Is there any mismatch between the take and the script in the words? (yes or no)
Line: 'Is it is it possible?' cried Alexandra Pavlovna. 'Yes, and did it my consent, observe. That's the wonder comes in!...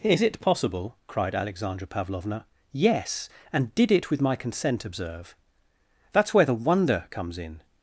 yes